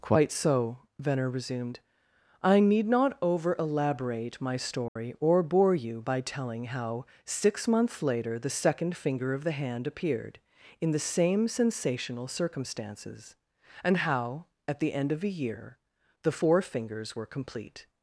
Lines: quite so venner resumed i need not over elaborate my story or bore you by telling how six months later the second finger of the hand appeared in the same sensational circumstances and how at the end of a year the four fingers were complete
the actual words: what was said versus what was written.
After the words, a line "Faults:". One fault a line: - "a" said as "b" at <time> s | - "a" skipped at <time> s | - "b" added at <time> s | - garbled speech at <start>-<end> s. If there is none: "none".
quite so venner resumed i need not over elaborate my story or bore you by telling how six months later the second finger of the hand appeared in the same sensational circumstances and how at the end of a year the four fingers were complete
Faults:
none